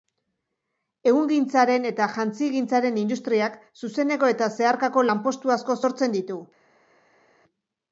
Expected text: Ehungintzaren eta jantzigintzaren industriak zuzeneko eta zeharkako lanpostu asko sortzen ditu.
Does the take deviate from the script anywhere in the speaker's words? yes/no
no